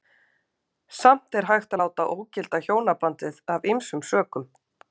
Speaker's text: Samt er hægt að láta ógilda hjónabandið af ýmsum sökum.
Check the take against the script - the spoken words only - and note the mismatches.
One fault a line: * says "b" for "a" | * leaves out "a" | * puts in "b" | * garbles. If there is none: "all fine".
all fine